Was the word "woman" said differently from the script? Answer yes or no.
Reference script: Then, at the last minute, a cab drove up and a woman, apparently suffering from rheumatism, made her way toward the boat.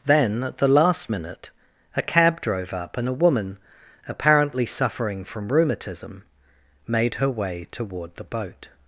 no